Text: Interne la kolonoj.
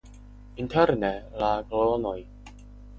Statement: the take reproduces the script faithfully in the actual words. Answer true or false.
true